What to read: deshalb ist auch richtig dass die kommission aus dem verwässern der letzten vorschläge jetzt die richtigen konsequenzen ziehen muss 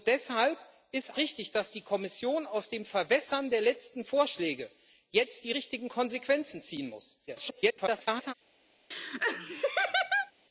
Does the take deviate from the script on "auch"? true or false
true